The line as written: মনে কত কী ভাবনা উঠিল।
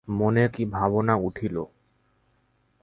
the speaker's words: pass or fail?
fail